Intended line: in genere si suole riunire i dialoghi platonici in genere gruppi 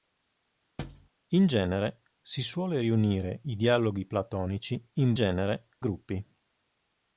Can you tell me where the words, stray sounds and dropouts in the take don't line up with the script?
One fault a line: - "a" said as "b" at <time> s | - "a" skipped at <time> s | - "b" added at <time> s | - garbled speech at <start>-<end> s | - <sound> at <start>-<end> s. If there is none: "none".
- thud at 0.8-1.1 s